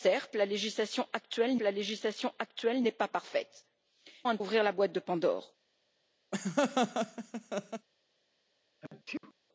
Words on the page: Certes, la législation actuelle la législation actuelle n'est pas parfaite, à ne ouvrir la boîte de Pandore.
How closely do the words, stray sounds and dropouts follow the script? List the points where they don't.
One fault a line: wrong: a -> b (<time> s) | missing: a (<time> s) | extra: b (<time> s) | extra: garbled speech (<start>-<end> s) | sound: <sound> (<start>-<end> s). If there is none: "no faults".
sound: laugh (6.3-7.9 s)
sound: sneeze (8.8-9.3 s)